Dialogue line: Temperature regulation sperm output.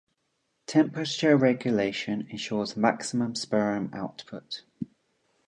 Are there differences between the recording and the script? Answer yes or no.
yes